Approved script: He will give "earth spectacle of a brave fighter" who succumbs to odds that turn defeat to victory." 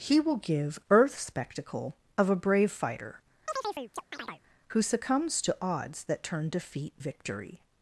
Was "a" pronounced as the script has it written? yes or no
yes